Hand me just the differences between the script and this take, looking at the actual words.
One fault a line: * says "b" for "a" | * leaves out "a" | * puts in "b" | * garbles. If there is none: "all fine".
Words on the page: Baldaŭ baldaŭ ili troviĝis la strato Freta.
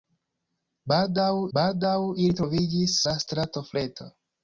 all fine